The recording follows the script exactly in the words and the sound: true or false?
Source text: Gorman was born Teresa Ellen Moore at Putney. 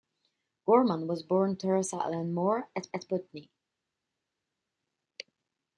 false